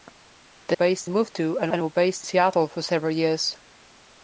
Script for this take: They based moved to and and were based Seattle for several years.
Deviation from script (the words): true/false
false